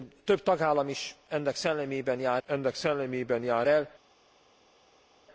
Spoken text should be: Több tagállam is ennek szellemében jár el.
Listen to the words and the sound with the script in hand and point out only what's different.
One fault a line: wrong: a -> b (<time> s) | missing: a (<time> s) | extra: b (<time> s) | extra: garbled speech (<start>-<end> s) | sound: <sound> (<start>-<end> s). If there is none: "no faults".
extra: ennek szellemében jár (2.4 s)